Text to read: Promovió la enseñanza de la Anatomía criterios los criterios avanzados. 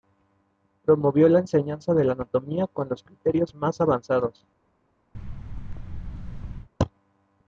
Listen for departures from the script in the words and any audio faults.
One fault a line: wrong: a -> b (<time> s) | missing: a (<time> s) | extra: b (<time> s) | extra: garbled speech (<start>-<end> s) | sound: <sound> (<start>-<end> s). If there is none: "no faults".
wrong: criterios -> con (2.6 s)
extra: más (3.5 s)
sound: thud (5.1-6.7 s)